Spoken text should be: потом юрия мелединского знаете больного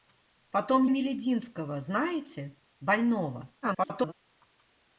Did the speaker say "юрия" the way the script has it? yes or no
no